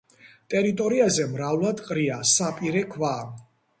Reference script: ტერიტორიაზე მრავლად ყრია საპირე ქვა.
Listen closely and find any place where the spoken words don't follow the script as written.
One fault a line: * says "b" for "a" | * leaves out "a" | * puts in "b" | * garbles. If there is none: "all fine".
all fine